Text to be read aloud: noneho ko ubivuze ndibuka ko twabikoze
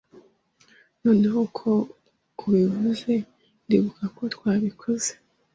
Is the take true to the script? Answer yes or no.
yes